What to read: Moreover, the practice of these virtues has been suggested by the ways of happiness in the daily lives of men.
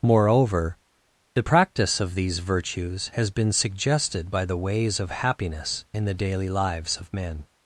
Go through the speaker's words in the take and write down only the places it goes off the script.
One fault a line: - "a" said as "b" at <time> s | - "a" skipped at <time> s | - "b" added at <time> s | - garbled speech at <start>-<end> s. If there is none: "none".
none